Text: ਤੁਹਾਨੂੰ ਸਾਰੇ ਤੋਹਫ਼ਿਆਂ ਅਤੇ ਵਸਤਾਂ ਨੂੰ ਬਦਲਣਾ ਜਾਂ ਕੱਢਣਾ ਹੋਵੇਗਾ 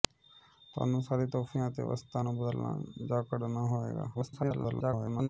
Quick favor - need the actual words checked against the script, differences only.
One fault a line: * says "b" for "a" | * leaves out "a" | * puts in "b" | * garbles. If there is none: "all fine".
* garbles